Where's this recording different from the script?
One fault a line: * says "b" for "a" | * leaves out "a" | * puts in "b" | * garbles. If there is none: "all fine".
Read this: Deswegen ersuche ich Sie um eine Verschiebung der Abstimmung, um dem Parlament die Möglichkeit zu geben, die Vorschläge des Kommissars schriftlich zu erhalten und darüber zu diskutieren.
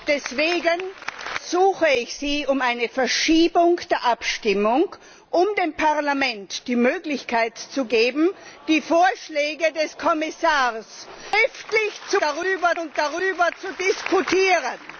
* says "darüber" for "erhalten"